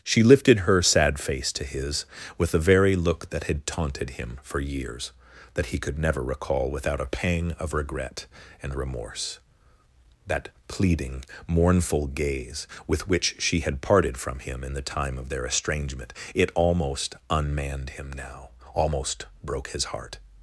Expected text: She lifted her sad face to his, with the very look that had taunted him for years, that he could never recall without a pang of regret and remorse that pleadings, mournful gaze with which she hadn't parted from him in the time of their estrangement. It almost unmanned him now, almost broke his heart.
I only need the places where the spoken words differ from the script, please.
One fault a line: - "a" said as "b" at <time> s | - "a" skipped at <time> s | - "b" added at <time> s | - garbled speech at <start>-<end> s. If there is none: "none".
- "pleadings" said as "pleading" at 10.7 s
- "hadn't" said as "had" at 13.6 s